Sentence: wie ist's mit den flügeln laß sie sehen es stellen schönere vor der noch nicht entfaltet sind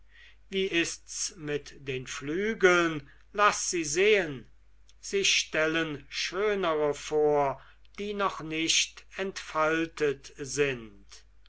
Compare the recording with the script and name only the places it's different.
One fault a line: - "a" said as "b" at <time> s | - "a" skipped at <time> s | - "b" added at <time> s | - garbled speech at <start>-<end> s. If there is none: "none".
- "es" said as "sie" at 5.0 s
- "der" said as "die" at 8.0 s